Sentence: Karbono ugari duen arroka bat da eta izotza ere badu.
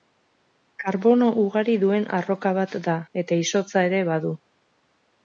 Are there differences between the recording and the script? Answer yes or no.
no